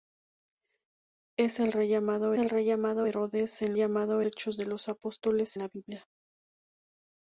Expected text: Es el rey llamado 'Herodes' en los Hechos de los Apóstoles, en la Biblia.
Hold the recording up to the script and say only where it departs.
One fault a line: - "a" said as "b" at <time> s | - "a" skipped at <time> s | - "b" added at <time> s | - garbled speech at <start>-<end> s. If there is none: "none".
- "el rey llamado" added at 2.4 s
- "los" said as "llamado" at 3.8 s
- "en" skipped at 5.6 s